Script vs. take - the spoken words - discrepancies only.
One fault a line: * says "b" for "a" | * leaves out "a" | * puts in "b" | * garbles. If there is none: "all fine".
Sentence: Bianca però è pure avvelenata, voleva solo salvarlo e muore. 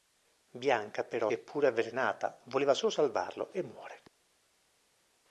all fine